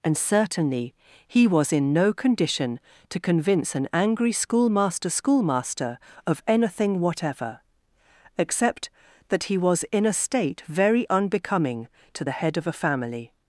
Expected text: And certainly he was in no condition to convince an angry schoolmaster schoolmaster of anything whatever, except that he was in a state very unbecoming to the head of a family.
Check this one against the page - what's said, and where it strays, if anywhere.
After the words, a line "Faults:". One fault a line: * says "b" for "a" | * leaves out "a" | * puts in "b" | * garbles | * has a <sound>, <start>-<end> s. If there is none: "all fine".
And certainly he was in no condition to convince an angry schoolmaster schoolmaster of anything whatever, except that he was in a state very unbecoming to the head of a family.
Faults:
all fine